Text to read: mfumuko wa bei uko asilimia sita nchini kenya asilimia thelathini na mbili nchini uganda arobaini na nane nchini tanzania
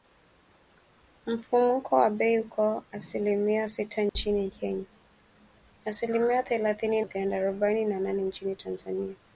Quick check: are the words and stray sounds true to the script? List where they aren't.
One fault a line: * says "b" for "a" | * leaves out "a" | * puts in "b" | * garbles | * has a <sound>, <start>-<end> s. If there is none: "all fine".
* has a dropout, 4.1-4.2 s
* leaves out "na mbili nchini"